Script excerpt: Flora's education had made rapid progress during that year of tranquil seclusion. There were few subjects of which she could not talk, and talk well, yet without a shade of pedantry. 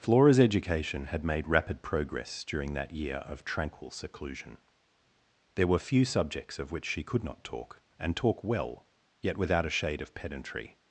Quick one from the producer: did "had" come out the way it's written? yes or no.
yes